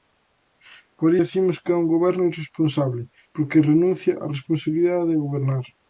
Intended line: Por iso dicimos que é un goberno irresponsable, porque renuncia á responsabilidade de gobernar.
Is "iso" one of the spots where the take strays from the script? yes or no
yes